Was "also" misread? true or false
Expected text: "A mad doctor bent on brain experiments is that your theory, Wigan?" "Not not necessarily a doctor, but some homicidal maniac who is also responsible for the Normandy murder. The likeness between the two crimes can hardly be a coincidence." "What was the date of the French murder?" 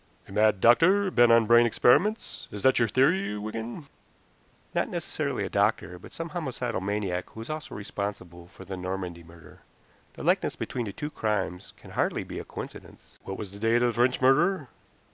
false